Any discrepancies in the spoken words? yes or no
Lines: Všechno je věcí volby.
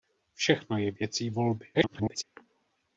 yes